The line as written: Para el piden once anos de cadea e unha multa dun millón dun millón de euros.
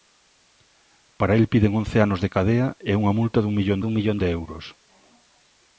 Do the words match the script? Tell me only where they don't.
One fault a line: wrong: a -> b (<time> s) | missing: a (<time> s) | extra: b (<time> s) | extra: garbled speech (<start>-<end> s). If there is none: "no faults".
no faults